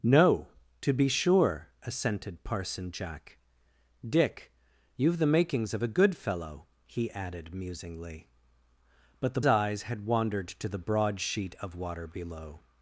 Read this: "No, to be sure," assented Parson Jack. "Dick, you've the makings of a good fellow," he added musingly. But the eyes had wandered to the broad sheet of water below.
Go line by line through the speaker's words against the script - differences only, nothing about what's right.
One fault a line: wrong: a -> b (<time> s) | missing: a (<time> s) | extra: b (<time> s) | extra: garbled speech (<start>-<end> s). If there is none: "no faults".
no faults